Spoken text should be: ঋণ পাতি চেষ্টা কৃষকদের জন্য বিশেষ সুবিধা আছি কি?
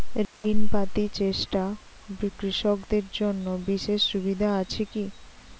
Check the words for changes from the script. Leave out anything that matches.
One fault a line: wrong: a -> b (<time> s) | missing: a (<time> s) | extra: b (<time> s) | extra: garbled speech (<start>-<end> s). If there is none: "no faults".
no faults